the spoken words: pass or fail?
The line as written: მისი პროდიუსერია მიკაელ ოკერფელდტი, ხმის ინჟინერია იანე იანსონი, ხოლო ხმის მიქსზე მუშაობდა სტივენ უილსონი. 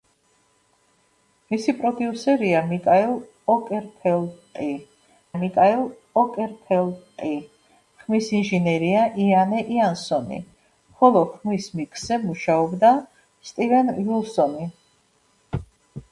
fail